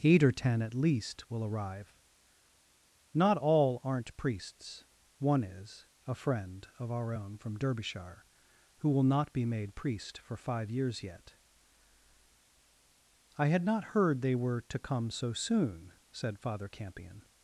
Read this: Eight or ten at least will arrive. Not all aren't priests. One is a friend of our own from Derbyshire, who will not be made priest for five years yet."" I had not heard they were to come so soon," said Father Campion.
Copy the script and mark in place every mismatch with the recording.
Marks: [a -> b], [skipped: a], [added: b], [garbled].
Eight or ten at least will arrive. Not all aren't priests. One is a friend of our own from Derbyshire, who will not be made priest for five years yet."" I had not heard they were to come so soon," said Father Campion.